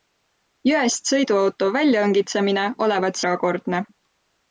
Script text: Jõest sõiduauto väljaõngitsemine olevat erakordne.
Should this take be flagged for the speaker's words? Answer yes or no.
no